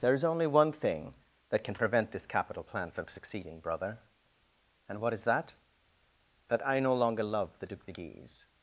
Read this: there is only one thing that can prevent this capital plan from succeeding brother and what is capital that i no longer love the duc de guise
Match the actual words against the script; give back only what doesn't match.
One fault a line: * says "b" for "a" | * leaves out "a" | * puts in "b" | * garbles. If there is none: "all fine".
* says "that" for "capital"